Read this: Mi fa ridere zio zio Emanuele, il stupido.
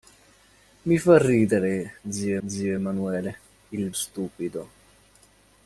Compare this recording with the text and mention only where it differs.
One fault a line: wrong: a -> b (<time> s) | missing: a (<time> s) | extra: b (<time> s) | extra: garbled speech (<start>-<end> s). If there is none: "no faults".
no faults